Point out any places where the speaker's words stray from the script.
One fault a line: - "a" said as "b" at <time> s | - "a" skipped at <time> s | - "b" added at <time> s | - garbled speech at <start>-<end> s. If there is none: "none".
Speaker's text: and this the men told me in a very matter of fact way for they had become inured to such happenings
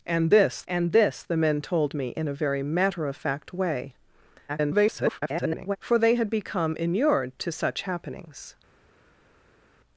- "and this" added at 0.7 s
- garbled speech at 4.5-5.8 s